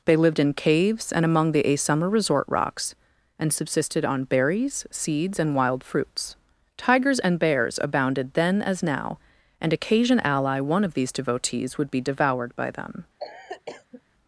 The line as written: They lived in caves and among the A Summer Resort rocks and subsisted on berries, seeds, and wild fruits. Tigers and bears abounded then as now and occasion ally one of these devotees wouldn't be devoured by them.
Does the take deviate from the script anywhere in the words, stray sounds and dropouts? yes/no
yes